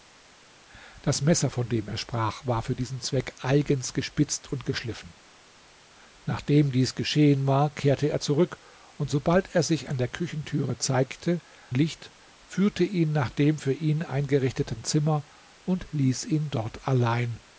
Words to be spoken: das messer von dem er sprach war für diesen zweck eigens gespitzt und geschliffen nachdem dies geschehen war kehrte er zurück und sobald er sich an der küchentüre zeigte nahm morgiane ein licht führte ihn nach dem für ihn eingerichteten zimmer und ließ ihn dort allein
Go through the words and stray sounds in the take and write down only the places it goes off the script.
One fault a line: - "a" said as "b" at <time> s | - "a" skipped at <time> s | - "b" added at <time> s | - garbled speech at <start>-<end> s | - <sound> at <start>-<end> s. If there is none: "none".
- "nahm morgiane ein" skipped at 11.4 s